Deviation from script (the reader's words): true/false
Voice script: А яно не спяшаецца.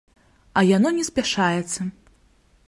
false